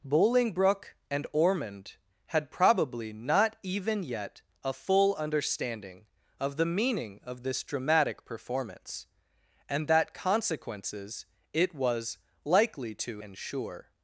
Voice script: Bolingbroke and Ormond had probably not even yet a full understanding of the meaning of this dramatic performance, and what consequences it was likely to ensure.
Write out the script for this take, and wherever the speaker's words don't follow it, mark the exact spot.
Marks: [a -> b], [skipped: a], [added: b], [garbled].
Bolingbroke and Ormond had probably not even yet a full understanding of the meaning of this dramatic performance, and [what -> that] consequences it was likely to ensure.